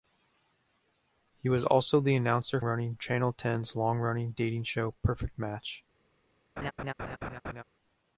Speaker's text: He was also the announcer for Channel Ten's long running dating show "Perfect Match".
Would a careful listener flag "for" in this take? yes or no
yes